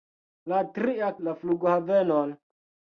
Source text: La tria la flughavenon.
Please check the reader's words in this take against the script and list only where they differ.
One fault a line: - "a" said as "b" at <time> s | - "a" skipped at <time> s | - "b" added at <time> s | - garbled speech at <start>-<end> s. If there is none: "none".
none